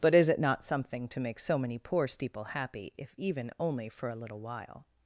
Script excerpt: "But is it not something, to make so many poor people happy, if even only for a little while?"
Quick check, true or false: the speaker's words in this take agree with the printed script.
false